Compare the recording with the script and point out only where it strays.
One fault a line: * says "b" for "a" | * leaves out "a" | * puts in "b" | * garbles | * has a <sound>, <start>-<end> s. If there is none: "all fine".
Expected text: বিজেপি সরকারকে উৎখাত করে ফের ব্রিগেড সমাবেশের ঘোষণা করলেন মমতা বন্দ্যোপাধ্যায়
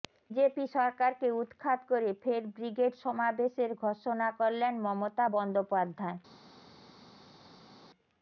all fine